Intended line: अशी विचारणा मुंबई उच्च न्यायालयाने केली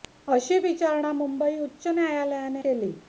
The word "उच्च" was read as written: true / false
true